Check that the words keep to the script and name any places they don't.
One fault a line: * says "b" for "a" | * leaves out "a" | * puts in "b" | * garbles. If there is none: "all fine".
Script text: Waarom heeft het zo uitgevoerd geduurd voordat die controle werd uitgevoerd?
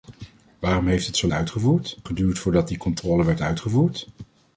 all fine